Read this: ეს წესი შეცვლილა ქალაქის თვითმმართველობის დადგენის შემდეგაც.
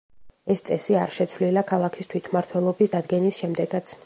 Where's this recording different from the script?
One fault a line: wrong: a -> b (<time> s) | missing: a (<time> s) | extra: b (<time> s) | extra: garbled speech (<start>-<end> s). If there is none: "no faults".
extra: არ (1.0 s)